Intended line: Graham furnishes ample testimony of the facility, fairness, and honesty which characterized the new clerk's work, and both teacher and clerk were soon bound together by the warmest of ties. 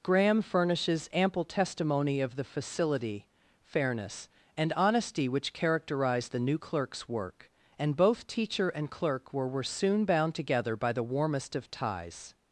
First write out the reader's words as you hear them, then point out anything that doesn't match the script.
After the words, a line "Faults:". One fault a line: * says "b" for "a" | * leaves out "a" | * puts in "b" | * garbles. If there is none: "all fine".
Graham furnishes ample testimony of the facility, fairness, and honesty which characterized the new clerk's work, and both teacher and clerk were were soon bound together by the warmest of ties.
Faults:
* puts in "were"